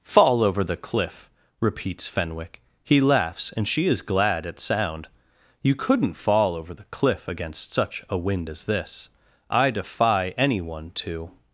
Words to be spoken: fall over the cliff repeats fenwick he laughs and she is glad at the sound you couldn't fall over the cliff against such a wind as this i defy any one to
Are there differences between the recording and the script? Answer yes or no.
yes